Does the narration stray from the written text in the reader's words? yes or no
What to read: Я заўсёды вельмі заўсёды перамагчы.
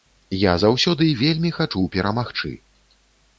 yes